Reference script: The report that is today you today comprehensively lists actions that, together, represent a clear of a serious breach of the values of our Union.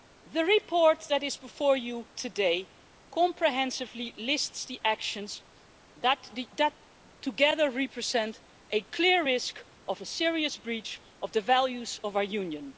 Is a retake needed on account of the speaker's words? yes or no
yes